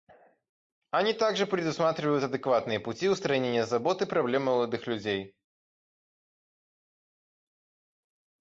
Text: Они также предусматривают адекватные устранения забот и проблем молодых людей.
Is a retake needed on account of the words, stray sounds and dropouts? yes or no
yes